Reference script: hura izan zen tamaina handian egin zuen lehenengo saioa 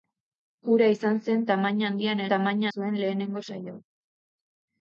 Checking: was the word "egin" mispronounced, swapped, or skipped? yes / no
yes